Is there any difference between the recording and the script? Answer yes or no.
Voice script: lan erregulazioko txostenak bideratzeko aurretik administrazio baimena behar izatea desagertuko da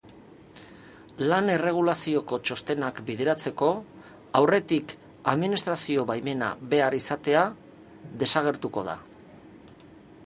no